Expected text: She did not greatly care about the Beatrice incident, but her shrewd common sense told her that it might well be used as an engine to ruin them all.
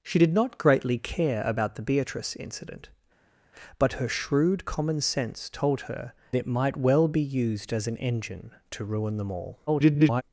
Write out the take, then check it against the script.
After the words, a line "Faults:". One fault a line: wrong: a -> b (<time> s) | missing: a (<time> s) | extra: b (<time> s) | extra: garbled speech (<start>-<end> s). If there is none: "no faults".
She did not greatly care about the Beatrice incident, but her shrewd common sense told her it might well be used as an engine to ruin them all. [garbled]
Faults:
missing: that (6.1 s)
extra: garbled speech (9.7-10.2 s)